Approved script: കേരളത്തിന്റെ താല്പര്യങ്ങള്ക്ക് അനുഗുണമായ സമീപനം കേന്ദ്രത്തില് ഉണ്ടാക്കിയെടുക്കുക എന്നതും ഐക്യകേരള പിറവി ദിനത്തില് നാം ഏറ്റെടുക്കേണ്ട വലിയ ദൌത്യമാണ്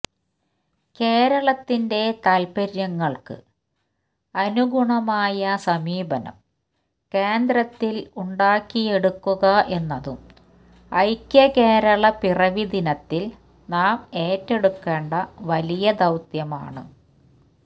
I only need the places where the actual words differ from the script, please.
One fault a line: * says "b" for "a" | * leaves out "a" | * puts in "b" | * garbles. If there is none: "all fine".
all fine